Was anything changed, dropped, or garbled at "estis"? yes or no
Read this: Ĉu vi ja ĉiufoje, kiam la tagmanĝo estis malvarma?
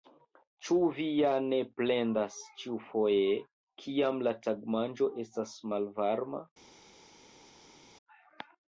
yes